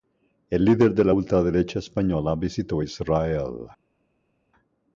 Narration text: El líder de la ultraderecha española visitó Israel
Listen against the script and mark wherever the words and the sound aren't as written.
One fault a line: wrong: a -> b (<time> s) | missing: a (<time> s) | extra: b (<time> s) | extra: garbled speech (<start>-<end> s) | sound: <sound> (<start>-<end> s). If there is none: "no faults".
no faults